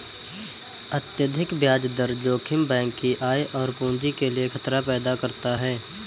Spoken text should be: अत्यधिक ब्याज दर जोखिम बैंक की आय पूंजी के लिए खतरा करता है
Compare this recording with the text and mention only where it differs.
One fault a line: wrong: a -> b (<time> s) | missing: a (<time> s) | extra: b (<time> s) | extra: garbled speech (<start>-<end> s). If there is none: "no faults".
extra: और (3.6 s)
extra: पैदा (4.8 s)